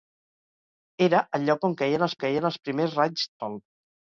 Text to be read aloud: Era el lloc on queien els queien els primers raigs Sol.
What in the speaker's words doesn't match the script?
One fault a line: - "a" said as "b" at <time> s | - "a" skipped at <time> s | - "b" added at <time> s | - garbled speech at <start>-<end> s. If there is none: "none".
none